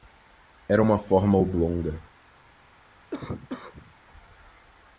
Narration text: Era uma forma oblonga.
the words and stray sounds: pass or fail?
fail